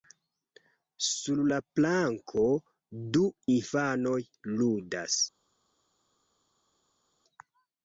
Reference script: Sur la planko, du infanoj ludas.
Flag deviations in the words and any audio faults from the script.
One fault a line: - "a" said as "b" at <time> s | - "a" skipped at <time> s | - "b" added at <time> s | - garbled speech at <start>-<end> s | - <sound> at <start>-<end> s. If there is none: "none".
none